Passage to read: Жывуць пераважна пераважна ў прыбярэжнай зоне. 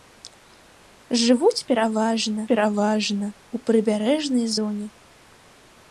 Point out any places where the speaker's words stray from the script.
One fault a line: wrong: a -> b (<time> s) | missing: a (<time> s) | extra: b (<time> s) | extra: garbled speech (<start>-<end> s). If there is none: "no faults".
no faults